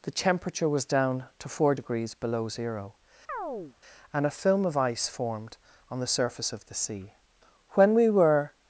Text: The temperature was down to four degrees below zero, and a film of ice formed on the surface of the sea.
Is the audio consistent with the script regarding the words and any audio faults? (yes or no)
no